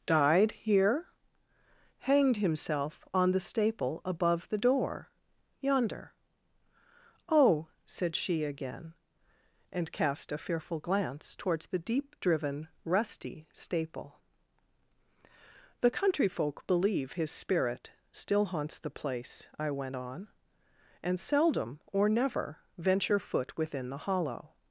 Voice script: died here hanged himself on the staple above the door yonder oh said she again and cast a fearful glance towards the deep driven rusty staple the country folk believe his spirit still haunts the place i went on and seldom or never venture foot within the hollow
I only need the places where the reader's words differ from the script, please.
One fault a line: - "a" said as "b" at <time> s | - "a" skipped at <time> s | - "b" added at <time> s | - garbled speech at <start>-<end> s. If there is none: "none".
none